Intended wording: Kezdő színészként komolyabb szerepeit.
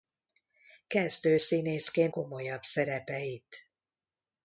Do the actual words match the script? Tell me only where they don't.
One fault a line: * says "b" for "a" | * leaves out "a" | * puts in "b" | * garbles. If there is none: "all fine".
all fine